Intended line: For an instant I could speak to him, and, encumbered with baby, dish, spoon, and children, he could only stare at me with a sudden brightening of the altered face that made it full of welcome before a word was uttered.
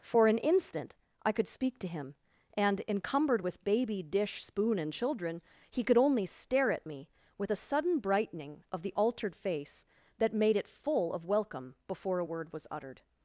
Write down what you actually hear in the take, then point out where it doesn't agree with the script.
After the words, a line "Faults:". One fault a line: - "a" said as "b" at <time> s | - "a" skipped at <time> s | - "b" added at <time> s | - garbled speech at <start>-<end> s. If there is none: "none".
For an instant I could speak to him, and, encumbered with baby, dish, spoon, and children, he could only stare at me with a sudden brightening of the altered face that made it full of welcome before a word was uttered.
Faults:
none